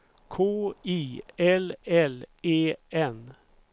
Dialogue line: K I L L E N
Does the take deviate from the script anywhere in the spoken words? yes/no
no